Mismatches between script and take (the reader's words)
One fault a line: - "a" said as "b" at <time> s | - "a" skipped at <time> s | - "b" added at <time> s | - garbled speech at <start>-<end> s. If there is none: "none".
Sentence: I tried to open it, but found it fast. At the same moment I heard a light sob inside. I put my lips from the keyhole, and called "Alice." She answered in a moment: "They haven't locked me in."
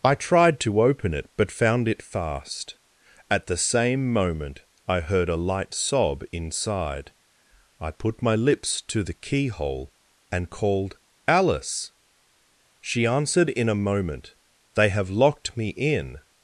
- "from" said as "to" at 8.8 s
- "haven't" said as "have" at 14.9 s